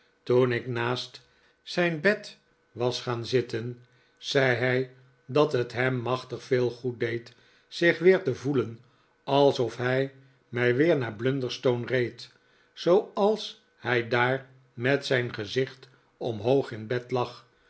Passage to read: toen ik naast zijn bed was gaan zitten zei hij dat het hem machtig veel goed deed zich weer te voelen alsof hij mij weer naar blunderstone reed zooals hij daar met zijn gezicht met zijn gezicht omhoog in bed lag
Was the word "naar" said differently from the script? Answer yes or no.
no